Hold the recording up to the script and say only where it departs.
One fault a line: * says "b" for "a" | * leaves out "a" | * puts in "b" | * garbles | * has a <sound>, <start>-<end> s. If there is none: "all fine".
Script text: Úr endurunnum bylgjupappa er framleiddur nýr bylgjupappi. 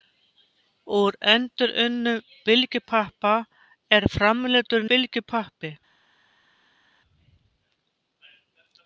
* leaves out "nýr"